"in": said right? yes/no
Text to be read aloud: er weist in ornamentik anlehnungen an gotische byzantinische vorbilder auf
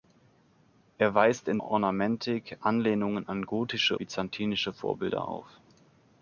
yes